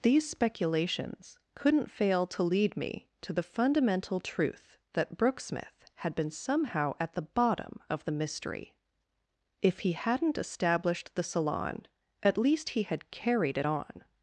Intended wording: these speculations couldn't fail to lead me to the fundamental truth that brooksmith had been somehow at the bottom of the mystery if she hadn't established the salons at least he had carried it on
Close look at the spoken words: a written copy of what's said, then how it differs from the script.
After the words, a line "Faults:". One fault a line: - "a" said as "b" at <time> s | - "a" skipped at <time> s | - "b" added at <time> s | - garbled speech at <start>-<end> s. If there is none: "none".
these speculations couldn't fail to lead me to the fundamental truth that brooksmith had been somehow at the bottom of the mystery if he hadn't established the salon at least he had carried it on
Faults:
- "she" said as "he" at 9.8 s
- "salons" said as "salon" at 11.2 s